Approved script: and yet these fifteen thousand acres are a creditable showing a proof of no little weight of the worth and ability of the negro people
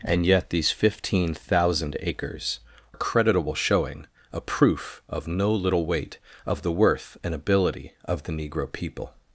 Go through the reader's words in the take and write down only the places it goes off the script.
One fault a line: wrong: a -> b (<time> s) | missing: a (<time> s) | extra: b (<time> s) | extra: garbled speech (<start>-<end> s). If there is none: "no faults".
missing: are (2.6 s)